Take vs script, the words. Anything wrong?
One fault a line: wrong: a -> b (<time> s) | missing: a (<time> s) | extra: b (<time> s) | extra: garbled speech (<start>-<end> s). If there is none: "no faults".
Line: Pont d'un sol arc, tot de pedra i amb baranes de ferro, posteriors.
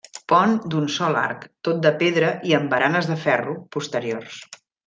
no faults